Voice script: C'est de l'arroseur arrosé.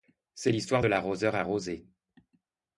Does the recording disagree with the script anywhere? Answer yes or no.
yes